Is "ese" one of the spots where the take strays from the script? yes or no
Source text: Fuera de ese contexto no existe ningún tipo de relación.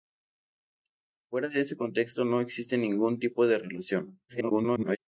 no